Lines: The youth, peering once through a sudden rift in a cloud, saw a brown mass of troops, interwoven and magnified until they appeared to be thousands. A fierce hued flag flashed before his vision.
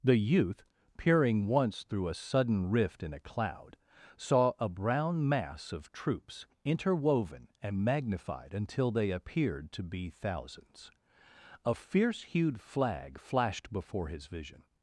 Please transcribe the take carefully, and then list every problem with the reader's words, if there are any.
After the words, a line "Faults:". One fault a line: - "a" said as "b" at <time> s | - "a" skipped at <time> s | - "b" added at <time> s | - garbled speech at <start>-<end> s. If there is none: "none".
The youth, peering once through a sudden rift in a cloud, saw a brown mass of troops, interwoven and magnified until they appeared to be thousands. A fierce hued flag flashed before his vision.
Faults:
none